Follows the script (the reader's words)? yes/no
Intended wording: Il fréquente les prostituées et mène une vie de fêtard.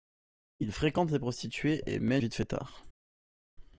no